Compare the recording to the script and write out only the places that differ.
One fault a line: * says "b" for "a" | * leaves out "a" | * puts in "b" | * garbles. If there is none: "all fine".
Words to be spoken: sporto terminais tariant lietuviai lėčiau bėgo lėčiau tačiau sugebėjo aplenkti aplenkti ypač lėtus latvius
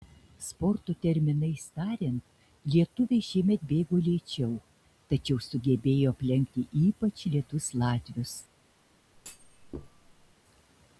* says "šiemet" for "lėčiau"
* leaves out "aplenkti"